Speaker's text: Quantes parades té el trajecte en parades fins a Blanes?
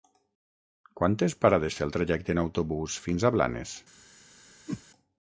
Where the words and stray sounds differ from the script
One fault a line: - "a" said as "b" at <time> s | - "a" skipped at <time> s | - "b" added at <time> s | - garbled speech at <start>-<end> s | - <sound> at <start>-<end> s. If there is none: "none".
- "parades" said as "autobús" at 2.5 s
- whoosh at 4.7-4.8 s